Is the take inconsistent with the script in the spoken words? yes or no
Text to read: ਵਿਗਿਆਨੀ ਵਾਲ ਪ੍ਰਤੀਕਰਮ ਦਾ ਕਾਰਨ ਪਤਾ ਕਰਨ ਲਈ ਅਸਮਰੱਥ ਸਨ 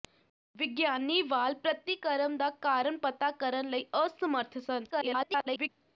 yes